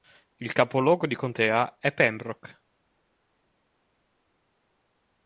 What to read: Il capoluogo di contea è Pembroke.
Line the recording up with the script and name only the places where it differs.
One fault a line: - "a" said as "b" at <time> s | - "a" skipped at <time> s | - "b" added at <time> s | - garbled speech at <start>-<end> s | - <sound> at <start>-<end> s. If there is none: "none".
none